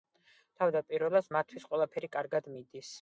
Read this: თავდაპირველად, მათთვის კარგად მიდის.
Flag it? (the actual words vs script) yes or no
yes